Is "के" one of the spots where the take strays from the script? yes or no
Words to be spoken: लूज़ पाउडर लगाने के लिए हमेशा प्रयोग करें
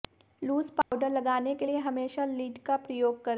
no